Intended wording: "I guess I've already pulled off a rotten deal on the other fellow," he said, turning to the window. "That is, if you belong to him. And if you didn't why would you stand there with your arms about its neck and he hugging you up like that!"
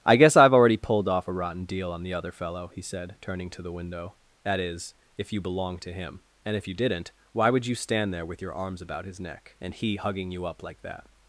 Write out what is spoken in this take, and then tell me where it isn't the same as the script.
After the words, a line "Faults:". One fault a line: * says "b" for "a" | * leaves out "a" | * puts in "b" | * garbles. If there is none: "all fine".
"I guess I've already pulled off a rotten deal on the other fellow," he said, turning to the window. "That is, if you belong to him. And if you didn't why would you stand there with your arms about his neck and he hugging you up like that!"
Faults:
* says "his" for "its"